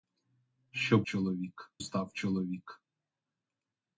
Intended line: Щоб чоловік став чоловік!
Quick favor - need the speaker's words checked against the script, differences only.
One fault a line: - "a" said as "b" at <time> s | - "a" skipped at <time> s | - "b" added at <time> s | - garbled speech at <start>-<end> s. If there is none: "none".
none